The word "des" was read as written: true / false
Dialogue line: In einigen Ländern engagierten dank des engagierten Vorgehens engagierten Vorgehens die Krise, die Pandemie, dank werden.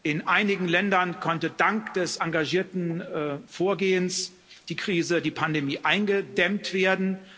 true